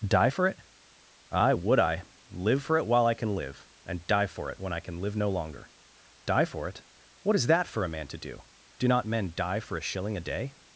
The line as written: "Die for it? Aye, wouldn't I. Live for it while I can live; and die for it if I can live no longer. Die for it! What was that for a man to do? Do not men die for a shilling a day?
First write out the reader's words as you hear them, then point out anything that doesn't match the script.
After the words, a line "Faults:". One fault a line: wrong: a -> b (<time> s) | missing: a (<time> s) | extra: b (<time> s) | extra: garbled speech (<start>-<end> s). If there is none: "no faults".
"Die for it? Aye, would I. Live for it while I can live; and die for it when I can live no longer. Die for it! What is that for a man to do? Do not men die for a shilling a day?
Faults:
wrong: wouldn't -> would (1.5 s)
wrong: if -> when (4.6 s)
wrong: was -> is (7.4 s)